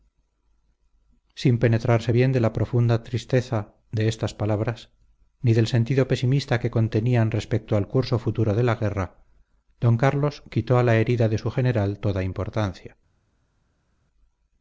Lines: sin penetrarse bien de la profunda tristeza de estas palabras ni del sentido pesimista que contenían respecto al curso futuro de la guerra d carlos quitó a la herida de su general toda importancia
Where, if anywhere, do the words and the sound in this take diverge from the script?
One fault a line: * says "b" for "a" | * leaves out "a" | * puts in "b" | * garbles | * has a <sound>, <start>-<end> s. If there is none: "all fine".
all fine